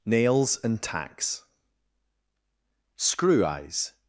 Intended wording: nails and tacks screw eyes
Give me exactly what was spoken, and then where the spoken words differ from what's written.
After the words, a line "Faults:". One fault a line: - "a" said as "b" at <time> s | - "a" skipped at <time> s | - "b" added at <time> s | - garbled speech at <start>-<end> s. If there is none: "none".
nails and tacks screw eyes
Faults:
none